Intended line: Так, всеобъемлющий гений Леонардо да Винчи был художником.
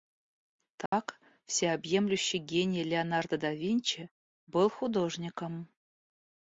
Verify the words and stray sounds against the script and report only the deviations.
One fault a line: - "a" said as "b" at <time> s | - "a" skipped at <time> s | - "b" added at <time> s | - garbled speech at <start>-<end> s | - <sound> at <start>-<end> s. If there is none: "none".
- dropout at 0.9-0.9 s